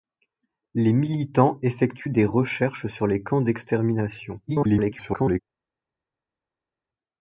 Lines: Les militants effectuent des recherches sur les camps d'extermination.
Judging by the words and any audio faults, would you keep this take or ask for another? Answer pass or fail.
fail